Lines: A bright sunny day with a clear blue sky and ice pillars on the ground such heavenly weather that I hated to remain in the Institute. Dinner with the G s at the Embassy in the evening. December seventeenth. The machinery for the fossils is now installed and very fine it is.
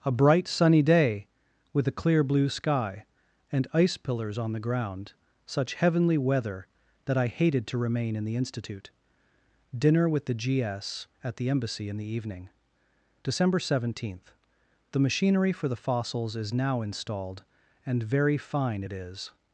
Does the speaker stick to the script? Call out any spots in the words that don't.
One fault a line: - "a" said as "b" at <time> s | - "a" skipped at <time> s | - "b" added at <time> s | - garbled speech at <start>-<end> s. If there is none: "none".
none